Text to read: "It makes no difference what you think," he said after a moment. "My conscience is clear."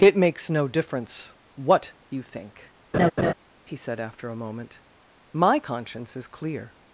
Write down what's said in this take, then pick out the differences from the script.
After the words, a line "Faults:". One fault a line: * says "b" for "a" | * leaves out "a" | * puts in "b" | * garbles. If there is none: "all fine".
"It makes no difference what you think," he said after a moment. "My conscience is clear."
Faults:
all fine